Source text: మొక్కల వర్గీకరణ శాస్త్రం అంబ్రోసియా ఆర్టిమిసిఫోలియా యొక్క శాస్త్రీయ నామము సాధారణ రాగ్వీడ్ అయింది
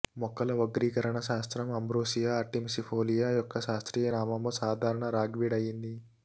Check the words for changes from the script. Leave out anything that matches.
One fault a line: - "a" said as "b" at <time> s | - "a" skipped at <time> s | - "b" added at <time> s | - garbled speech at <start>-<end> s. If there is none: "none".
none